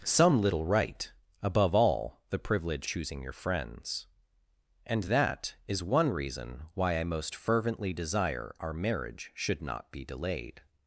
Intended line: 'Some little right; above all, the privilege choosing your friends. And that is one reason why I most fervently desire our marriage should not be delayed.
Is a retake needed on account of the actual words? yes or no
no